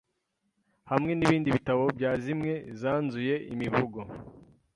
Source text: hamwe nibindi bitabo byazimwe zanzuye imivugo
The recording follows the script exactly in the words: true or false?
true